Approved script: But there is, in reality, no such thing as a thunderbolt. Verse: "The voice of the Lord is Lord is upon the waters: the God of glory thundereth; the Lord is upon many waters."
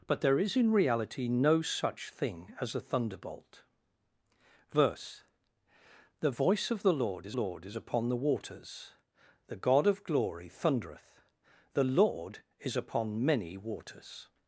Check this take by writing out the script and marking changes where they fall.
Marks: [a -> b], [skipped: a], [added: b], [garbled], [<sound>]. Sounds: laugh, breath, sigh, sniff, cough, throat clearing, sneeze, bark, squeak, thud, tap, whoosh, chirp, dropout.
But there is, in reality, no such thing as a thunderbolt. Verse: "The voice of the Lord is Lord is upon the waters: the God of glory thundereth; the Lord is upon many waters."